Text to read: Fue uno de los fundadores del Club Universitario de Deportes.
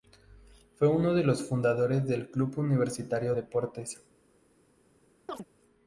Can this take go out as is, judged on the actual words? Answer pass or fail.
fail